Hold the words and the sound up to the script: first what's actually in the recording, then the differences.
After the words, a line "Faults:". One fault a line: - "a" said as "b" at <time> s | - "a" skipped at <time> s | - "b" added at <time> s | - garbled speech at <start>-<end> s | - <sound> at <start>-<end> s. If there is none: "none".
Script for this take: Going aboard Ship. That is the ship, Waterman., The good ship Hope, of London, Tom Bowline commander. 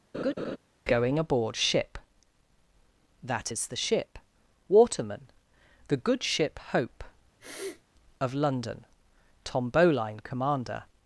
Going aboard Ship. That is the ship, Waterman., The good ship Hope, of London, Tom Bowline commander.
Faults:
- laugh at 0.1-0.6 s
- sniff at 7.4-7.8 s